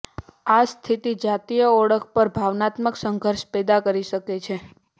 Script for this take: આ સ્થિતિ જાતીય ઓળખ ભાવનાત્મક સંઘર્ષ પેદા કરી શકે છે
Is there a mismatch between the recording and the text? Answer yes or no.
yes